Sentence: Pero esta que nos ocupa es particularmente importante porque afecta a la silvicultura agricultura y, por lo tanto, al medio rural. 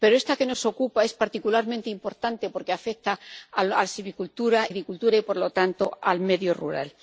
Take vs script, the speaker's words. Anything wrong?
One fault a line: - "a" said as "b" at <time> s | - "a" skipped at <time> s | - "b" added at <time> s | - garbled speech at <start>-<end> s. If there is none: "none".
none